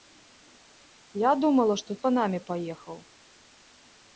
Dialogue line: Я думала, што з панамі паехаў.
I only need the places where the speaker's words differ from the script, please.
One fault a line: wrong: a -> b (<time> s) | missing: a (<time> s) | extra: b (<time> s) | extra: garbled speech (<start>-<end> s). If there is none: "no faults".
no faults